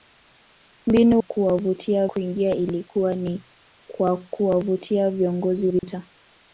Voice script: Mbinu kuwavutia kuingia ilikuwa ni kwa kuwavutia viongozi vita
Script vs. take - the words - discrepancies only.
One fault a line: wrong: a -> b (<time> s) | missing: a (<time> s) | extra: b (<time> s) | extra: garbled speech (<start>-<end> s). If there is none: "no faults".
no faults